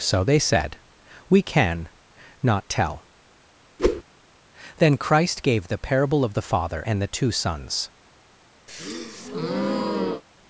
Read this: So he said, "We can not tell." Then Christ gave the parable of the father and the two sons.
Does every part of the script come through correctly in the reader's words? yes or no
no